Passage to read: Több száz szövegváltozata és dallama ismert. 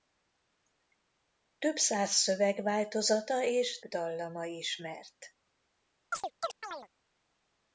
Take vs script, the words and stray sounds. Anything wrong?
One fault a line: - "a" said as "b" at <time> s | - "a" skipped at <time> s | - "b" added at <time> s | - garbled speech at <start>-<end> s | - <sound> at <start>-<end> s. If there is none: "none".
- chirp at 6.1-6.9 s